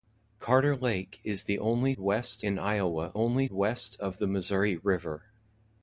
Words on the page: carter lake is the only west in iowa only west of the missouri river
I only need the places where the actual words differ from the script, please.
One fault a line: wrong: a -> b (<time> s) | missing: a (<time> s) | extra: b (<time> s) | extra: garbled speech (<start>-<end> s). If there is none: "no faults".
no faults